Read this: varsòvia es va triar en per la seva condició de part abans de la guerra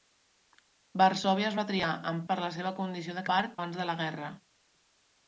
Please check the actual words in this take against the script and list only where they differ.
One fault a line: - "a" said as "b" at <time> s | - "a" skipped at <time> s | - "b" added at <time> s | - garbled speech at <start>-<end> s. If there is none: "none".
none